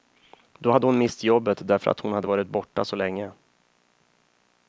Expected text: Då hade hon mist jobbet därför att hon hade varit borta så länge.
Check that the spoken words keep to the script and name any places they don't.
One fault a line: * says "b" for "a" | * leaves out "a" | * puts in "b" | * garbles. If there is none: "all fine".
all fine